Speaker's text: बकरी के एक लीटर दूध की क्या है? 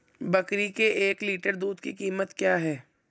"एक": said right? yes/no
yes